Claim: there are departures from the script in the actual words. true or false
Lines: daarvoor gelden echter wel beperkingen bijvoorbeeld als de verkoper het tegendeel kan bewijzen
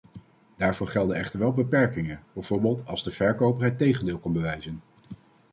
false